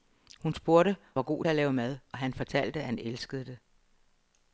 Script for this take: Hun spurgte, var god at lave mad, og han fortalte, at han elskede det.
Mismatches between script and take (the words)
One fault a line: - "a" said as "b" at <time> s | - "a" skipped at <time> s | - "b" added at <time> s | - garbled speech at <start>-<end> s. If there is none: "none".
none